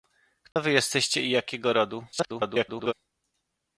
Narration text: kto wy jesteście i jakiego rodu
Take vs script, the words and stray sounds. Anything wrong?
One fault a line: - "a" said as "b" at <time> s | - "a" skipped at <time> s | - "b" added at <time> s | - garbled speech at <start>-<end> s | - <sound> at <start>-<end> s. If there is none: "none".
- dropout at 0.5-0.6 s
- garbled speech at 2.1-2.9 s